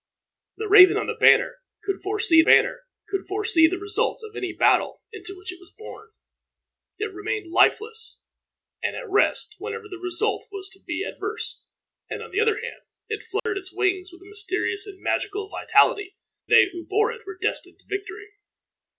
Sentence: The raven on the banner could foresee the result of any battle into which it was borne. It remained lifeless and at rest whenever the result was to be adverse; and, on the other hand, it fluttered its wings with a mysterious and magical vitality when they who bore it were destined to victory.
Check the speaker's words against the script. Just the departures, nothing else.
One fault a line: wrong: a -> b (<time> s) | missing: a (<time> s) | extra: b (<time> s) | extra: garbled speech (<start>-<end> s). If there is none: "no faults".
extra: banner could foresee (2.4 s)
missing: when (16.1 s)